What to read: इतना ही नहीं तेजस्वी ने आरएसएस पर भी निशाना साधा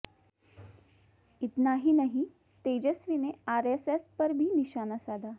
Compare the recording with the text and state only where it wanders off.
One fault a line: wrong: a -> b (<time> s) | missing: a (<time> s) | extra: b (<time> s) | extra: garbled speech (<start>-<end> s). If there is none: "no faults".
no faults